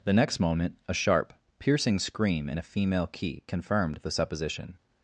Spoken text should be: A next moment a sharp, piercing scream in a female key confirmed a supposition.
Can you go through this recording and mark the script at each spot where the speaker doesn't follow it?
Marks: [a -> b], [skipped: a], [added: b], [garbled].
[A -> The] next moment a sharp, piercing scream in a female key confirmed [a -> the] supposition.